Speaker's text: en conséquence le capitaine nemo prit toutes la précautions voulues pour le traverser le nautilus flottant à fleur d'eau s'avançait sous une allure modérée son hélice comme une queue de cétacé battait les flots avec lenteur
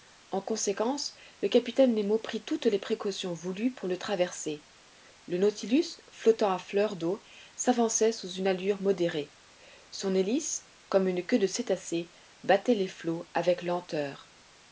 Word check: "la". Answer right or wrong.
wrong